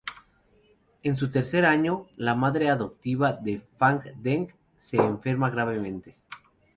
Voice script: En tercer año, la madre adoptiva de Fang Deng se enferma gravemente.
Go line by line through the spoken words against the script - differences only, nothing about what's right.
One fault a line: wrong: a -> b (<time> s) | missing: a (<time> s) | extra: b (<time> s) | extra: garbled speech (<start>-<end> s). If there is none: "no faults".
extra: su (1.1 s)